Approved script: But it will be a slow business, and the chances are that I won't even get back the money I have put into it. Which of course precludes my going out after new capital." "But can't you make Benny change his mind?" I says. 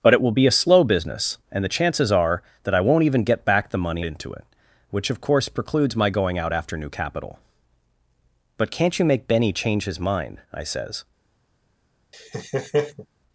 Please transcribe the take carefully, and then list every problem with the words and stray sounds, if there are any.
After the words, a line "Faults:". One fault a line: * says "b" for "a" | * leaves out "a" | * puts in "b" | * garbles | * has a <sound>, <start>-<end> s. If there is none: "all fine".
But it will be a slow business, and the chances are that I won't even get back the money into it. Which of course precludes my going out after new capital." "But can't you make Benny change his mind?" I says.
Faults:
* leaves out "I have put"
* has a laugh, 12.1-13.1 s